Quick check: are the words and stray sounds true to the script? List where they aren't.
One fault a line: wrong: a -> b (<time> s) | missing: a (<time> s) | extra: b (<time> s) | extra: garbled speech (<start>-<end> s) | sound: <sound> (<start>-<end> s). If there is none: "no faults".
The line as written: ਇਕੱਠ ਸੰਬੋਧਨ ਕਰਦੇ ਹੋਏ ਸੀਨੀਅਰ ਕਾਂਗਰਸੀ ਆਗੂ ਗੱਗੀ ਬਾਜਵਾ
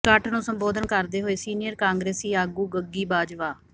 extra: ਨੂੰ (0.3 s)